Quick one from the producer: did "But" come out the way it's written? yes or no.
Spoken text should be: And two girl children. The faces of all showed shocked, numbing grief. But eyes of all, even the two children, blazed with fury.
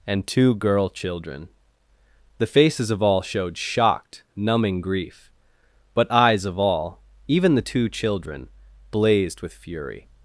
yes